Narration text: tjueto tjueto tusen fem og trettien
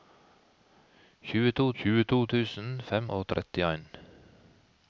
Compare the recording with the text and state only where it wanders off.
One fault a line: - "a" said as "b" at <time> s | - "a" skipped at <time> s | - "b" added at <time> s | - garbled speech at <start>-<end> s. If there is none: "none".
none